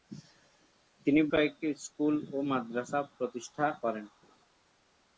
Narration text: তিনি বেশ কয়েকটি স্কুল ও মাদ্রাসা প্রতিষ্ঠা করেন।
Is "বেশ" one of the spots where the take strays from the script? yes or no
yes